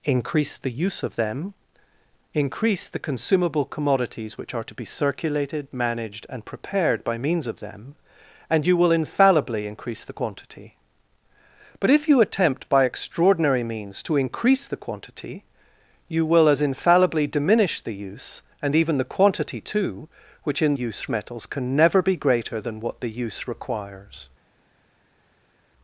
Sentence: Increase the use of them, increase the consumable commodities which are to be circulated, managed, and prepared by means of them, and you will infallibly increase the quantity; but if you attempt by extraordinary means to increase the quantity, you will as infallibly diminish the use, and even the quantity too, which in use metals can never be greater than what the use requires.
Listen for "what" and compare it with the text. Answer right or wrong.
right